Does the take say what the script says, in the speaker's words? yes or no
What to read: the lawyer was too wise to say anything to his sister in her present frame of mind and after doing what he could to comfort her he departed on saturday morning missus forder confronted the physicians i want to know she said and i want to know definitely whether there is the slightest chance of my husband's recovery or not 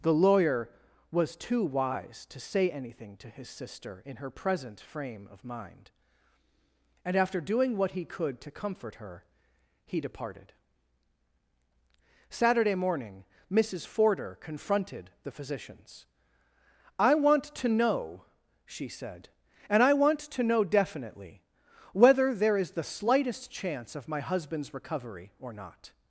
no